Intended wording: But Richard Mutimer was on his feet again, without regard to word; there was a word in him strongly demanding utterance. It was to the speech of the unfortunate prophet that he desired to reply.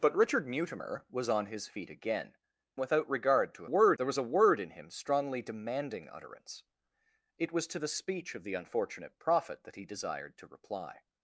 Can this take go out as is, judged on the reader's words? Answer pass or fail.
pass